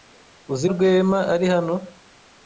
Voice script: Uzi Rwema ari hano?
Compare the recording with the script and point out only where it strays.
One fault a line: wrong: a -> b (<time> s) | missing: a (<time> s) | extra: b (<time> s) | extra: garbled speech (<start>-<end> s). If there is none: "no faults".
no faults